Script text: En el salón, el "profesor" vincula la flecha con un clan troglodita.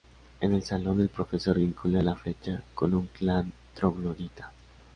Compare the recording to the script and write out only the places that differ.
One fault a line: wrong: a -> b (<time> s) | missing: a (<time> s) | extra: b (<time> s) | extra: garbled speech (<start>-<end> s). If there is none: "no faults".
no faults